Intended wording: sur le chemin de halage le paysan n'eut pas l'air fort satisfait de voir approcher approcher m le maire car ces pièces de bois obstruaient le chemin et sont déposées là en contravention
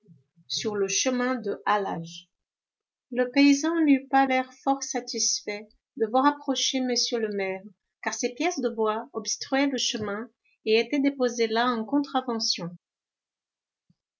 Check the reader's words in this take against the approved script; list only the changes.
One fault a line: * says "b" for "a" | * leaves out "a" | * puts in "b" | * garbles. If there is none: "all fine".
* leaves out "approcher"
* says "étaient" for "sont"